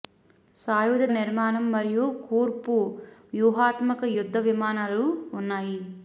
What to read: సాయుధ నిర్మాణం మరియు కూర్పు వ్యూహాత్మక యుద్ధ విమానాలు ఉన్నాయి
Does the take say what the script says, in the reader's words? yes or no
yes